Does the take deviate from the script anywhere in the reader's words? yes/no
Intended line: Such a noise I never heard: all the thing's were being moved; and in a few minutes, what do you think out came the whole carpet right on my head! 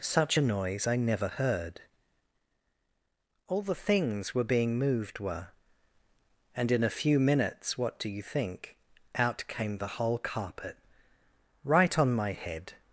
yes